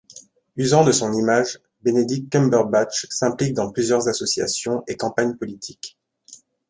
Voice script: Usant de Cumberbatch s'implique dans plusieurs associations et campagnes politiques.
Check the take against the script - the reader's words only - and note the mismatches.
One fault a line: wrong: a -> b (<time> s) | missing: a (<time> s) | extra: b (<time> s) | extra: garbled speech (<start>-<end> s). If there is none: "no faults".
extra: son image Benedict (0.9 s)